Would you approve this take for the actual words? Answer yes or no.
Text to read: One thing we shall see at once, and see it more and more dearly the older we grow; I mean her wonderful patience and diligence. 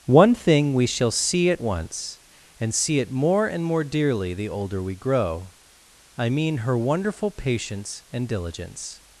yes